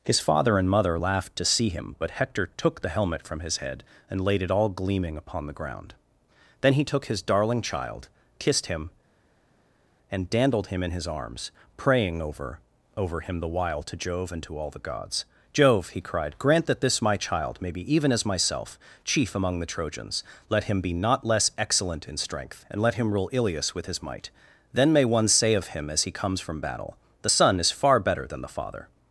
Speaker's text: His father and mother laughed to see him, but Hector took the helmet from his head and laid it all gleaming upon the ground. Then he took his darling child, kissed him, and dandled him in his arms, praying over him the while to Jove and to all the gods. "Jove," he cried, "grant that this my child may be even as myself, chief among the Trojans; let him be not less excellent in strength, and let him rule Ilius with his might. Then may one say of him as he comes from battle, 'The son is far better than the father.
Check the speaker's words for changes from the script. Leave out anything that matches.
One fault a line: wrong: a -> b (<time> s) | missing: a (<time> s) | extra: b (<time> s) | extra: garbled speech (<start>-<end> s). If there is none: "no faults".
extra: over (13.0 s)